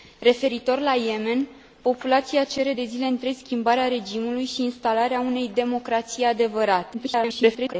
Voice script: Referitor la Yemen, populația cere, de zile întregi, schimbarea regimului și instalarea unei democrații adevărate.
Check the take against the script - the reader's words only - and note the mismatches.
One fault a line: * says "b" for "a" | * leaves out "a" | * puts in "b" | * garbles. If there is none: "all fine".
* garbles